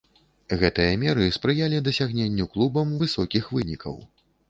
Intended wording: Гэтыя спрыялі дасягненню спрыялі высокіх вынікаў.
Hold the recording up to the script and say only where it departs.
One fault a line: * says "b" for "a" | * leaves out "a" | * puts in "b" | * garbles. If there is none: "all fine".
* puts in "меры"
* says "клубам" for "спрыялі"